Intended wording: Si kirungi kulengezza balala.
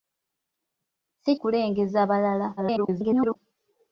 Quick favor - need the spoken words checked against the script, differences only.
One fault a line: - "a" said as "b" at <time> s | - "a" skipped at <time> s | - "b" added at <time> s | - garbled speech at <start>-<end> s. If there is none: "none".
- "kirungi" skipped at 1.3 s
- garbled speech at 2.6-3.4 s